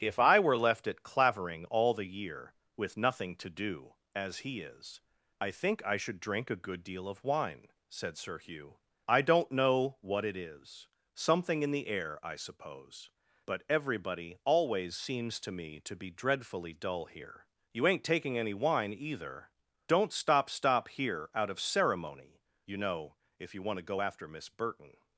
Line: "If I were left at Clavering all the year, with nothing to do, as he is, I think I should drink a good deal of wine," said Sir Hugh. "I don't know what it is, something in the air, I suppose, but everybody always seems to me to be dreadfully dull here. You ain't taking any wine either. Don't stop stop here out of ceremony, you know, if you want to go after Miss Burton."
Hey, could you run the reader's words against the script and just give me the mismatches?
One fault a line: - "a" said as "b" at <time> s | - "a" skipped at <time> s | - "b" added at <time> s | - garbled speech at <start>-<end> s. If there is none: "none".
none